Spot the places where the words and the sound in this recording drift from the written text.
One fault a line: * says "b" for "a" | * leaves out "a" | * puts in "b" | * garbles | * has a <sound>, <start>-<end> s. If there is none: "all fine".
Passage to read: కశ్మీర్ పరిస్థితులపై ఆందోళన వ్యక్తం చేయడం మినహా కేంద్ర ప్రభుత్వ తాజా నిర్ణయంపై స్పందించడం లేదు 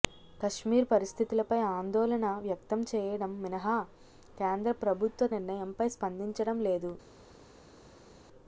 * leaves out "తాజా"